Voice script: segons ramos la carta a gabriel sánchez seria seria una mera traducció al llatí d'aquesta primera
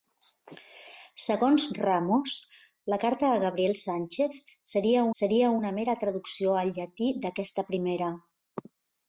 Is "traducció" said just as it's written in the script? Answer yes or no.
yes